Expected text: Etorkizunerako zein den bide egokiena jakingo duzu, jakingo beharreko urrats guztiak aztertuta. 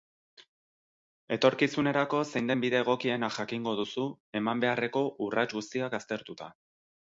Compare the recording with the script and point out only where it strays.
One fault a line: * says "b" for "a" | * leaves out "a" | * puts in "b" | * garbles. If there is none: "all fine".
* says "eman" for "jakingo"